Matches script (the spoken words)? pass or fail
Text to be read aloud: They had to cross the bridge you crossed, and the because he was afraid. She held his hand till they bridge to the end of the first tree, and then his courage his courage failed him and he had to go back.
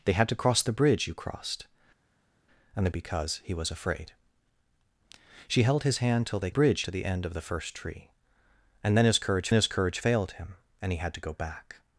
pass